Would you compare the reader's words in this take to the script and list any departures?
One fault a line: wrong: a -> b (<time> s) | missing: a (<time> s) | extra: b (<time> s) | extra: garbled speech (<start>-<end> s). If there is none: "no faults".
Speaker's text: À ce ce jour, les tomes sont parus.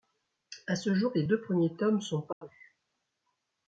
missing: ce (0.9 s)
extra: deux premiers (1.3 s)